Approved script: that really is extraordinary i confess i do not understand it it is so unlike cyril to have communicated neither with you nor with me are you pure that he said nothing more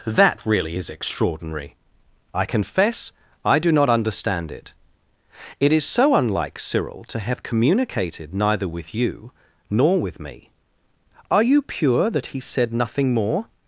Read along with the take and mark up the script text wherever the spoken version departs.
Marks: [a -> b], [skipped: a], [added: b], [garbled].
that really is extraordinary i confess i do not understand it it is so unlike cyril to have communicated neither with you nor with me are you pure that he said nothing more